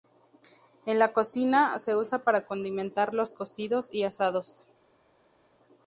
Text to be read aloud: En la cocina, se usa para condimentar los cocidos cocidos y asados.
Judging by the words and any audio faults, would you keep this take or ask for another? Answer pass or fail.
fail